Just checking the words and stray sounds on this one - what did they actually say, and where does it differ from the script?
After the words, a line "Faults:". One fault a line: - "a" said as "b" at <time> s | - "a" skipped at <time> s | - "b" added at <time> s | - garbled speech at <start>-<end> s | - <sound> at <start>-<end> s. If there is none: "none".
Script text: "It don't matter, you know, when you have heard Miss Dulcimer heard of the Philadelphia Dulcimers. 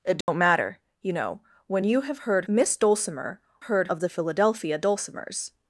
"It don't matter, you know, when you have heard Miss Dulcimer heard of the Philadelphia Dulcimers.
Faults:
- dropout at 0.2-0.3 s